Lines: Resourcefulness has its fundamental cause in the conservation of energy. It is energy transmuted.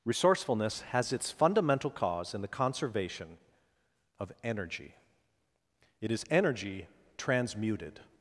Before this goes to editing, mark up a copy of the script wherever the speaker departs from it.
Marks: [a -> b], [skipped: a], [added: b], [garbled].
Resourcefulness has its fundamental cause in the conservation of energy. It is energy transmuted.